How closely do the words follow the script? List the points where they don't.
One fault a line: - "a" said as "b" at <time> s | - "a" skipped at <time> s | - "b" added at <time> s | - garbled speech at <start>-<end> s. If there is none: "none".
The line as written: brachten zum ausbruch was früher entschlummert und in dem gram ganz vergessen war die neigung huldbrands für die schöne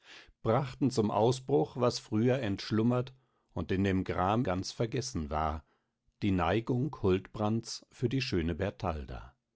none